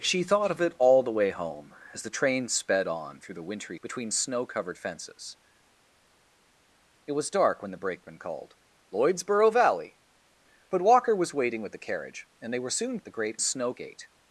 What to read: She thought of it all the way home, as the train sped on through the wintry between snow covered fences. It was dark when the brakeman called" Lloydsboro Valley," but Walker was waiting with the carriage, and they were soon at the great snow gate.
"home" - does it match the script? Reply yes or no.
yes